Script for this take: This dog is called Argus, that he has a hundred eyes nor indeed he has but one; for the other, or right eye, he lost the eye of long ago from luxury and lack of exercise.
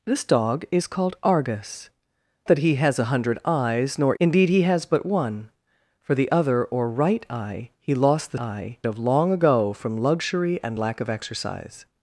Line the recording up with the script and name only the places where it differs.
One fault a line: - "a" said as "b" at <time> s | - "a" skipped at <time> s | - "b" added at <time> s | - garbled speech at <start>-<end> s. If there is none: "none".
none